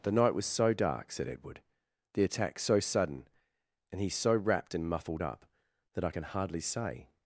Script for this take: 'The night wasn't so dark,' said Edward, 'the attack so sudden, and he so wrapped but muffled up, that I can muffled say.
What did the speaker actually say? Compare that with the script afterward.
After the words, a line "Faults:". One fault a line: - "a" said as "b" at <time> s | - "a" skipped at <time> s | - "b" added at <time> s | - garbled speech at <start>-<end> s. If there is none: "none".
'The night was so dark,' said Edward, 'the attack so sudden, and he so wrapped and muffled up, that I can hardly say.
Faults:
- "wasn't" said as "was" at 0.3 s
- "but" said as "and" at 4.7 s
- "muffled" said as "hardly" at 6.2 s